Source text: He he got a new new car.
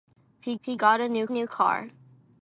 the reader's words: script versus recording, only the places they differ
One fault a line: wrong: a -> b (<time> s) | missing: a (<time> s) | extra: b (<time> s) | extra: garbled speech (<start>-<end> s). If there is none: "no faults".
no faults